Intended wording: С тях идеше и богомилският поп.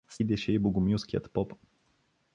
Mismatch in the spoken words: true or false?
true